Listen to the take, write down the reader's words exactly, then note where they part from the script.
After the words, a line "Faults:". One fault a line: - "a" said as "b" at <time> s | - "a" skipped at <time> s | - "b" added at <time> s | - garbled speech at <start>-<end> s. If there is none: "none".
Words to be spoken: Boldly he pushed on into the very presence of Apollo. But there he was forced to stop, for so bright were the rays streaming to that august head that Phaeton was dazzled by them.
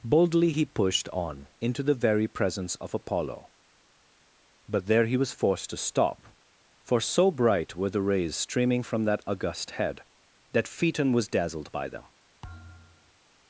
Boldly he pushed on into the very presence of Apollo. But there he was forced to stop, for so bright were the rays streaming from that august head that Phaeton was dazzled by them.
Faults:
- "to" said as "from" at 8.8 s